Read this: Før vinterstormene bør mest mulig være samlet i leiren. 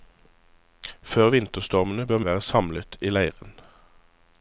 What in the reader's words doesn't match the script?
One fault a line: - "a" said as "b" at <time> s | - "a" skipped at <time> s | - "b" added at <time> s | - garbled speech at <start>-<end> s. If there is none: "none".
- "mest mulig" skipped at 2.2 s